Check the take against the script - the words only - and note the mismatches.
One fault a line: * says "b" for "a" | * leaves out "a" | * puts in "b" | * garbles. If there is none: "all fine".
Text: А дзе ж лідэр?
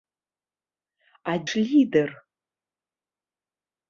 * leaves out "дзе"